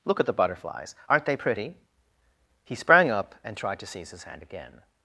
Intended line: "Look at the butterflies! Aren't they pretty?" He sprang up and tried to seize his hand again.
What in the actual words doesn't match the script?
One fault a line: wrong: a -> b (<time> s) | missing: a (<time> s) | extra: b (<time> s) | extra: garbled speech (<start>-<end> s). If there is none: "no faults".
no faults